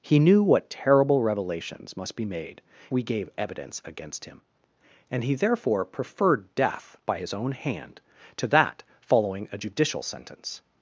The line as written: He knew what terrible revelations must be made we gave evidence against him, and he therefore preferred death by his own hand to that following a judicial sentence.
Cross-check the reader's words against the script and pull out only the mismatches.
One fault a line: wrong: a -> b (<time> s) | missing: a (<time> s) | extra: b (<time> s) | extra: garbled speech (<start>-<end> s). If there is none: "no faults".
no faults